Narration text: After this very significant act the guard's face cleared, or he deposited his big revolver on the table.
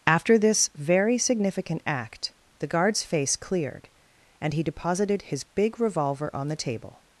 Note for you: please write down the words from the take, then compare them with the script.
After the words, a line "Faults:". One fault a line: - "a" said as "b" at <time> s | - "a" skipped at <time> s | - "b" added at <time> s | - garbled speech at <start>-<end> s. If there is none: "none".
After this very significant act the guard's face cleared, and he deposited his big revolver on the table.
Faults:
- "or" said as "and" at 4.4 s